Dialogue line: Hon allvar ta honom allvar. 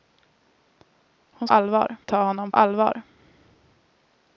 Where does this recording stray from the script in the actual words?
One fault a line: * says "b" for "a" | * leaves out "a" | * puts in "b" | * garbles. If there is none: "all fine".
all fine